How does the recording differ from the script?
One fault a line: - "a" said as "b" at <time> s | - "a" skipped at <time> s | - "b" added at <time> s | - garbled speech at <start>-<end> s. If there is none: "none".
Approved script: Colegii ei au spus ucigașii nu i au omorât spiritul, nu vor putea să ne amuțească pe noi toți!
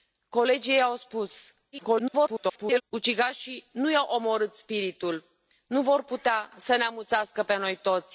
- garbled speech at 1.7-2.8 s